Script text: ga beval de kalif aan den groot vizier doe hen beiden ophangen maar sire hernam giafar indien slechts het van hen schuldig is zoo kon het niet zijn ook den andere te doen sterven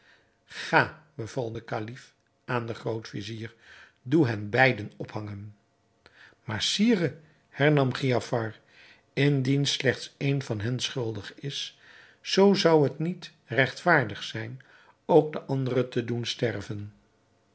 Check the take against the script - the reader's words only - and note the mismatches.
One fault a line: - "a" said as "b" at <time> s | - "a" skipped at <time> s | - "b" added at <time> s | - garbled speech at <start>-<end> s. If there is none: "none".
- "het" said as "een" at 10.2 s
- "kon" said as "zou" at 12.5 s
- "regtvaardig" added at 13.4 s